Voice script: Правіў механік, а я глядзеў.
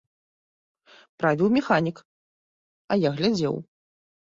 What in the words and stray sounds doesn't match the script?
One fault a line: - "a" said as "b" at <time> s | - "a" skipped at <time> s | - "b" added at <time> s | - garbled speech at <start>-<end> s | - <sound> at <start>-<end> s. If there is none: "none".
none